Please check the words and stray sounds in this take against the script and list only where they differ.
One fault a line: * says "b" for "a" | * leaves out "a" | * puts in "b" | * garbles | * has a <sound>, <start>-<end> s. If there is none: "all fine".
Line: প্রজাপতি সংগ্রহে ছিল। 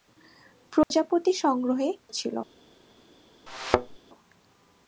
* has a dropout, 0.8-0.9 s
* has a thud, 3.5-4.0 s